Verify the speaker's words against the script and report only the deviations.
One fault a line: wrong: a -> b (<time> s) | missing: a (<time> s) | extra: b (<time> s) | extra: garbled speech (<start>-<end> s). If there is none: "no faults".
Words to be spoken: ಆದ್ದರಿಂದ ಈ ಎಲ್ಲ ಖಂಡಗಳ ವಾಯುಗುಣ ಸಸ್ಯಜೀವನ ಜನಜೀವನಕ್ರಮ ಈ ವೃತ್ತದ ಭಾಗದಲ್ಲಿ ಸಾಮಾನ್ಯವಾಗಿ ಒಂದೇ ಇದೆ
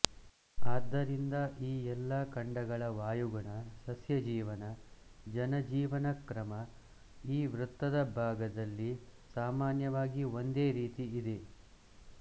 extra: ರೀತಿ (10.8 s)